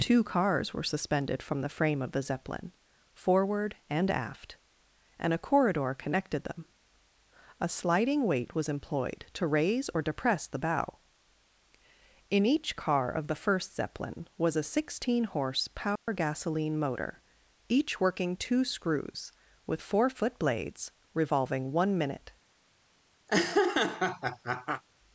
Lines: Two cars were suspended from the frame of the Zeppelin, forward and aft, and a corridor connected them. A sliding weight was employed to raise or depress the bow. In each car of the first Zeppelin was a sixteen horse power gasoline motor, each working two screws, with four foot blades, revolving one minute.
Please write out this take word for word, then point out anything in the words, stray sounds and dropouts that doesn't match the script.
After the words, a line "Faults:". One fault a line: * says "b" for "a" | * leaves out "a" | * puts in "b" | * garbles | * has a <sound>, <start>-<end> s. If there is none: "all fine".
Two cars were suspended from the frame of the Zeppelin, forward and aft, and a corridor connected them. A sliding weight was employed to raise or depress the bow. In each car of the first Zeppelin was a sixteen horse power gasoline motor, each working two screws, with four foot blades, revolving one minute.
Faults:
* has a dropout, 16.0-16.1 s
* has a laugh, 23.3-24.8 s